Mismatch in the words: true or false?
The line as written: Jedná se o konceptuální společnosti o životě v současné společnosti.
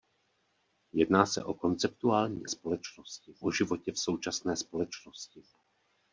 false